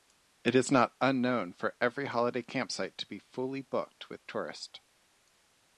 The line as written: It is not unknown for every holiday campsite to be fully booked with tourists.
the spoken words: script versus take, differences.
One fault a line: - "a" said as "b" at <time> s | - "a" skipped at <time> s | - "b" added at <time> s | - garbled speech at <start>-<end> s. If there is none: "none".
none